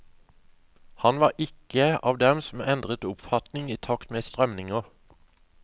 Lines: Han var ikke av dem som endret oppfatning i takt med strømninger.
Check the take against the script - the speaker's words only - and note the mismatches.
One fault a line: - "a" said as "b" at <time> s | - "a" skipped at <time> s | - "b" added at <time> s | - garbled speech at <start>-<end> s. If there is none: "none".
none